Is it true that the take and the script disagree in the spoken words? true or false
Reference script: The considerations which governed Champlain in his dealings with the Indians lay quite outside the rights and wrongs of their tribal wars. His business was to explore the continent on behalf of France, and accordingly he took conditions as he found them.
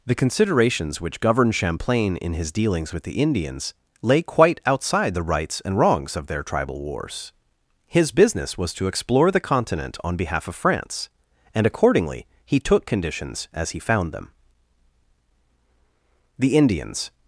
true